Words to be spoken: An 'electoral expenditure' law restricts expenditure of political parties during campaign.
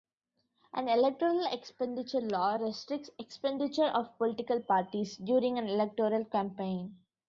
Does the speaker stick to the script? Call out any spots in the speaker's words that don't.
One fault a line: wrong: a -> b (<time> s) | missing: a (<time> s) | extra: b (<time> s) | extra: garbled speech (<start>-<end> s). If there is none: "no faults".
extra: an electoral (5.6 s)